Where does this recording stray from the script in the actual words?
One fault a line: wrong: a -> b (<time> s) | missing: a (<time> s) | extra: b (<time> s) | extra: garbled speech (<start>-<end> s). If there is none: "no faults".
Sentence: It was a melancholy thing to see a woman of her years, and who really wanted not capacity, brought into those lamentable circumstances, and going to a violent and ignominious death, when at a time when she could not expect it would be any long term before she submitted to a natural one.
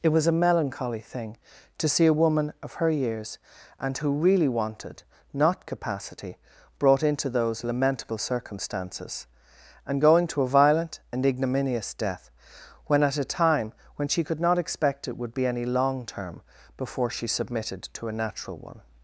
no faults